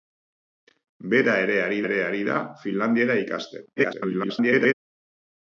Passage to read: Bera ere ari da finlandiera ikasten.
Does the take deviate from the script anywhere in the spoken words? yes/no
yes